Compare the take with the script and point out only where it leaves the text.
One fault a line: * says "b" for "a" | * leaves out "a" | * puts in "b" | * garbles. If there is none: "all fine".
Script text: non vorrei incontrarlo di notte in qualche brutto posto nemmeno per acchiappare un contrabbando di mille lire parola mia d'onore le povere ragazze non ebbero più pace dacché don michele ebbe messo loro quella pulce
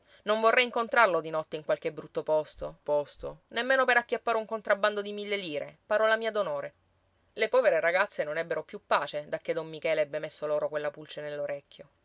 * puts in "posto"